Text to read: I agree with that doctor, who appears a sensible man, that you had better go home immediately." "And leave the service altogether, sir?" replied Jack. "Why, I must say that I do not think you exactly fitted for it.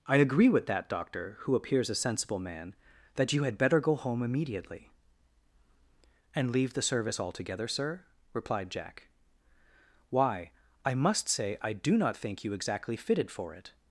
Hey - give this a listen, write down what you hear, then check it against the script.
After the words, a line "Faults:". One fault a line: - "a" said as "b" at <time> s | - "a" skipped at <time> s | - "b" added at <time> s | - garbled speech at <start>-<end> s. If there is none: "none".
I agree with that doctor, who appears a sensible man, that you had better go home immediately." "And leave the service altogether, sir?" replied Jack. "Why, I must say I do not think you exactly fitted for it.
Faults:
- "that" skipped at 11.6 s